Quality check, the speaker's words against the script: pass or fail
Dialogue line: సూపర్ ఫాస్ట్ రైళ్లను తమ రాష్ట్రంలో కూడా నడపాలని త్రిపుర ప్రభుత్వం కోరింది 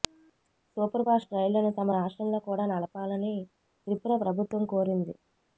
pass